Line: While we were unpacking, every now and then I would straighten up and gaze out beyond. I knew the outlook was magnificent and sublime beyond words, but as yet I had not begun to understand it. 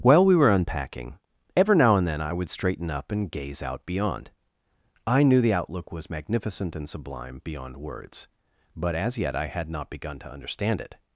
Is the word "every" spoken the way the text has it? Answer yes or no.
no